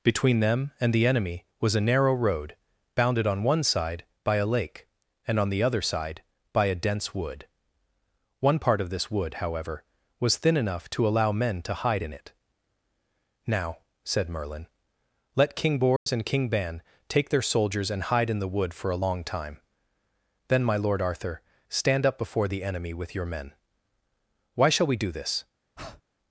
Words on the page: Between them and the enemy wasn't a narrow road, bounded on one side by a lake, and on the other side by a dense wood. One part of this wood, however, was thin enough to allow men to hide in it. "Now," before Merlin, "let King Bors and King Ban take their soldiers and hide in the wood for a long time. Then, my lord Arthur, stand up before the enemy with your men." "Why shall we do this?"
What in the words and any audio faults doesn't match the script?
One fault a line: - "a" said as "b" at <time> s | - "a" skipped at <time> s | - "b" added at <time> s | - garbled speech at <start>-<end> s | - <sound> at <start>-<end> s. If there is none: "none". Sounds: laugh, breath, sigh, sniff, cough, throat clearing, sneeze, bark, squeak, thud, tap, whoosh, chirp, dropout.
- "wasn't" said as "was" at 1.6 s
- "before" said as "said" at 14.1 s
- dropout at 16.0-16.1 s
- breath at 25.8-26.0 s